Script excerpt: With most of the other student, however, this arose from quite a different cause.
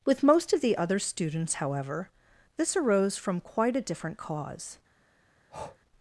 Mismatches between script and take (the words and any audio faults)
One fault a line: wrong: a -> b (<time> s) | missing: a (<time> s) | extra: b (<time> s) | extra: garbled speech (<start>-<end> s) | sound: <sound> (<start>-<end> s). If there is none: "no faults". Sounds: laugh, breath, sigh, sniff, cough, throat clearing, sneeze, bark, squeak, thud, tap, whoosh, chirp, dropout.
wrong: student -> students (1.0 s)
sound: breath (5.5-5.8 s)